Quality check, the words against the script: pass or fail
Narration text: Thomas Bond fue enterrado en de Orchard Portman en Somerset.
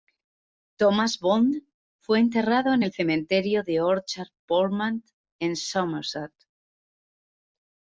fail